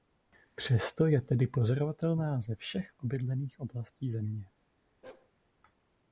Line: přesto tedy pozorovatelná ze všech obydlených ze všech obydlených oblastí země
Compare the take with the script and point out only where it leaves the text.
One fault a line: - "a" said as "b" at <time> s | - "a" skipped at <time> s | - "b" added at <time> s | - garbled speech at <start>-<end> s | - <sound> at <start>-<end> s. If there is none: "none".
- "je" added at 1.1 s
- "ze všech obydlených" skipped at 3.6 s
- bark at 5.0-5.3 s